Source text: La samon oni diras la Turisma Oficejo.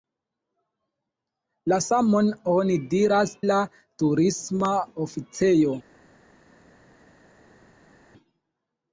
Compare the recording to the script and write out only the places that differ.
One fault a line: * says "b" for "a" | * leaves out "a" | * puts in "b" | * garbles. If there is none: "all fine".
all fine